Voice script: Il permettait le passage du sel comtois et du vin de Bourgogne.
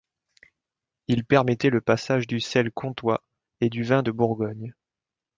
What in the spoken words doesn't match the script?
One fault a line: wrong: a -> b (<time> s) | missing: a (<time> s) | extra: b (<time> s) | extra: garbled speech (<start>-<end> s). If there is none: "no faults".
no faults